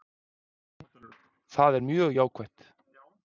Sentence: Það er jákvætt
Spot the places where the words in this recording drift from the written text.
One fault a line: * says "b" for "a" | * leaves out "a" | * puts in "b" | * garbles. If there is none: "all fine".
* puts in "mjög"